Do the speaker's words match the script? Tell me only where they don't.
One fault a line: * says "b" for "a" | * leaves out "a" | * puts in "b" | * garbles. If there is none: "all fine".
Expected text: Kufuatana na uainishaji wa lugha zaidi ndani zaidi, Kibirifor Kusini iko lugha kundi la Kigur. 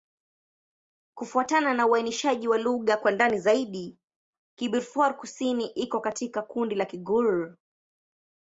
* says "kwa" for "zaidi"
* says "katika" for "lugha"